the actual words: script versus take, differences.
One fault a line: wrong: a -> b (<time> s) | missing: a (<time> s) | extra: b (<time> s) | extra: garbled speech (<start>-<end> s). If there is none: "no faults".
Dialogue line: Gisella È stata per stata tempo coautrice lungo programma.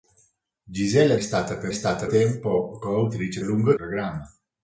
no faults